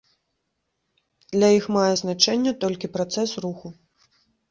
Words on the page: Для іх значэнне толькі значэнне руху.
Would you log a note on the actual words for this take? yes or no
yes